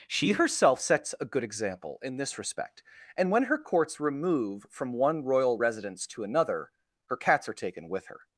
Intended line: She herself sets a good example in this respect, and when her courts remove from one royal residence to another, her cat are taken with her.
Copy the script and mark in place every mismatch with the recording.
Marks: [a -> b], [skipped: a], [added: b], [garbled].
She herself sets a good example in this respect, and when her courts remove from one royal residence to another, her [cat -> cats] are taken with her.